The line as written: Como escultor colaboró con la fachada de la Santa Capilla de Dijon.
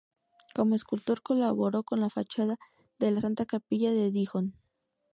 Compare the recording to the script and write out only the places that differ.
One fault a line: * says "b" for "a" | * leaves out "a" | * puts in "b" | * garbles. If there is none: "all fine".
all fine